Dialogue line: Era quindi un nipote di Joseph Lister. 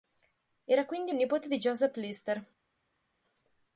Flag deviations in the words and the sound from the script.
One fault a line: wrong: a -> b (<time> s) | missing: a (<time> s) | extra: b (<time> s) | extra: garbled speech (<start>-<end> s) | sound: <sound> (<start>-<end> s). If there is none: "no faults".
no faults